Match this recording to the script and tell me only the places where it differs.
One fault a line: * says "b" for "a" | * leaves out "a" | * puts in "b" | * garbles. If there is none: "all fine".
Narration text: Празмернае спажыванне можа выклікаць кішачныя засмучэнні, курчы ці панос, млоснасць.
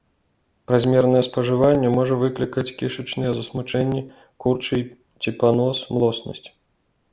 all fine